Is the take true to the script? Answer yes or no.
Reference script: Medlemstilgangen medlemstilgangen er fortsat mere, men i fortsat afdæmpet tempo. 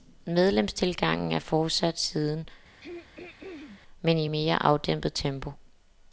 no